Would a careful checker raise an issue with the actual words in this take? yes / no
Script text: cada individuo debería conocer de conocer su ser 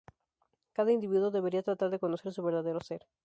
yes